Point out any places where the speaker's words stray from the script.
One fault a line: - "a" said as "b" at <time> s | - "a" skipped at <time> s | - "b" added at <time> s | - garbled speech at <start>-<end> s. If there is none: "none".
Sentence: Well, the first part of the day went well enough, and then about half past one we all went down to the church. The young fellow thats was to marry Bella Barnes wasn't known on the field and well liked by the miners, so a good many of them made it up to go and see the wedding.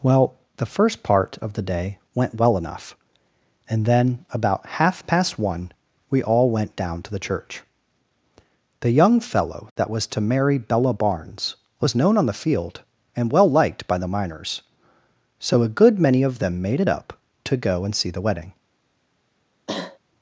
- "thats" said as "that" at 9.8 s
- "wasn't" said as "was" at 11.8 s